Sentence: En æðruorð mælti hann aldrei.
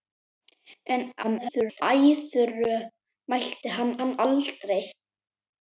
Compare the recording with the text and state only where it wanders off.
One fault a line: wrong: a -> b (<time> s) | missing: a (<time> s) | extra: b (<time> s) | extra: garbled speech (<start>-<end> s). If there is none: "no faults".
extra: garbled speech (1.2-1.8 s)
extra: hann (4.0 s)